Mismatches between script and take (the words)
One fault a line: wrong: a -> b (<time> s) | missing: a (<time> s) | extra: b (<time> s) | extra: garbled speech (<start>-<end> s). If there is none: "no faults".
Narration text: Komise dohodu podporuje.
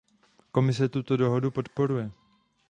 extra: tuto (0.9 s)